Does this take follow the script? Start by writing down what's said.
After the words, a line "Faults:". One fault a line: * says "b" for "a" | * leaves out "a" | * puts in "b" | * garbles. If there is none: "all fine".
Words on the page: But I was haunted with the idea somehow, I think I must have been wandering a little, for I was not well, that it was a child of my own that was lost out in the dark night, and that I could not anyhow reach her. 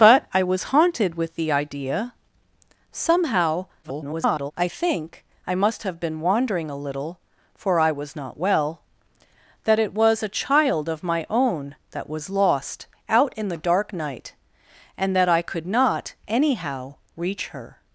But I was haunted with the idea somehow, [garbled] I think I must have been wandering a little, for I was not well, that it was a child of my own that was lost out in the dark night, and that I could not anyhow reach her.
Faults:
* garbles